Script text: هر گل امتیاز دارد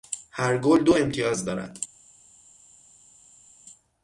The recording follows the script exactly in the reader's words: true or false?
false